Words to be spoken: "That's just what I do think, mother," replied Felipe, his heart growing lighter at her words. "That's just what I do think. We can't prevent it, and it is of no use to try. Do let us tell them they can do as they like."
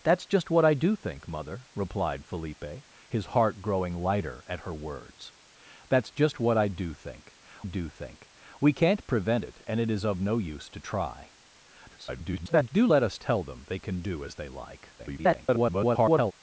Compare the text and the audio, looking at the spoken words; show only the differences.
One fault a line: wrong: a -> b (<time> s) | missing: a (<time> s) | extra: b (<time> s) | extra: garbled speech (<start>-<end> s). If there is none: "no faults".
extra: do think (7.6 s)
extra: garbled speech (11.9-12.7 s)
extra: garbled speech (15.0-16.3 s)